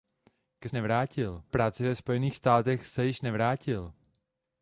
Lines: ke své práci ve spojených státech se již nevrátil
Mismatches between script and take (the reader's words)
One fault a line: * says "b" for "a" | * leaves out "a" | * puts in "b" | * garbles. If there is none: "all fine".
* says "nevrátil" for "své"